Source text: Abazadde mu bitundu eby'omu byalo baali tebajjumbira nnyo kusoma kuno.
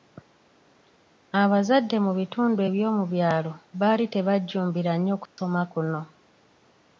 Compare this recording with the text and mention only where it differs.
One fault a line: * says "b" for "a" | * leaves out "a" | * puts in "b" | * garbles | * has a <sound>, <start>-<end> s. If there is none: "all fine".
* has a dropout, 5.3-5.4 s